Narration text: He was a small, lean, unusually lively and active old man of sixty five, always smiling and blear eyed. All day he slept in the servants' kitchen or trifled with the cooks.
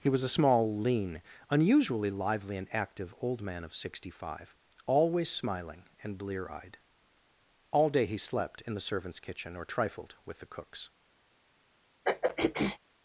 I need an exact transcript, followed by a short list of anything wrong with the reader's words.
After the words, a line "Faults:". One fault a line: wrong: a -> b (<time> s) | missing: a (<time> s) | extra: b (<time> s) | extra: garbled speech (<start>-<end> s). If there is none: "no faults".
He was a small, lean, unusually lively and active old man of sixty five, always smiling and blear eyed. All day he slept in the servants' kitchen or trifled with the cooks.
Faults:
no faults